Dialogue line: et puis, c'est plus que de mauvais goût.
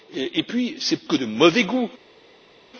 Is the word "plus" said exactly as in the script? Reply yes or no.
no